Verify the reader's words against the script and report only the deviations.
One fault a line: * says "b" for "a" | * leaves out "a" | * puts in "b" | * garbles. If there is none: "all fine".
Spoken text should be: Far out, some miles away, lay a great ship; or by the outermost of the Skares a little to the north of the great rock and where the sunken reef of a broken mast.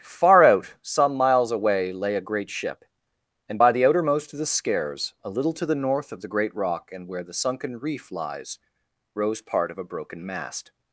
* says "and" for "or"
* puts in "lies rose part"